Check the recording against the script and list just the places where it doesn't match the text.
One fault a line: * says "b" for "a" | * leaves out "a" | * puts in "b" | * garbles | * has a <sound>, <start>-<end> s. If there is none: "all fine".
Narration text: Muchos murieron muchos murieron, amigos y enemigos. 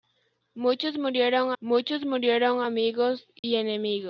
* has a dropout, 3.4-3.4 s